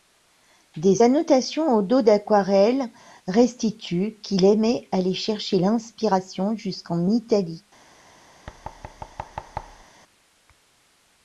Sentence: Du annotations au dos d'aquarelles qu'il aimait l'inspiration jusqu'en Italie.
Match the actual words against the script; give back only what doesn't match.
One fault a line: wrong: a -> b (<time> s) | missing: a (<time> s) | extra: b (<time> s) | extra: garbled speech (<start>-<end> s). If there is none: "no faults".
wrong: Du -> Des (0.8 s)
extra: restituent (3.3 s)
extra: aller chercher (4.9 s)